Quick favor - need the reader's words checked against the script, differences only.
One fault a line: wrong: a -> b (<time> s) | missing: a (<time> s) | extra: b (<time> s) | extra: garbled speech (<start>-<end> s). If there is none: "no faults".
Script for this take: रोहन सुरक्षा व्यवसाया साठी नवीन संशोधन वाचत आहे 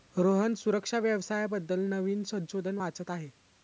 wrong: साठी -> बद्दल (1.5 s)